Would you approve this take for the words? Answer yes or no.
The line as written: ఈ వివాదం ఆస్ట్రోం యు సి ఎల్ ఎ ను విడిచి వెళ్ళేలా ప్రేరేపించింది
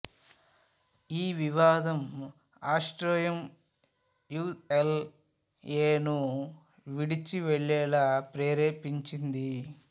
no